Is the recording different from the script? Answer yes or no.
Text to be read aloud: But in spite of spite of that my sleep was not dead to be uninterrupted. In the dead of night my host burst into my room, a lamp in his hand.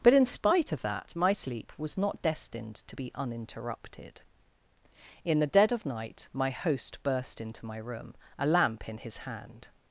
yes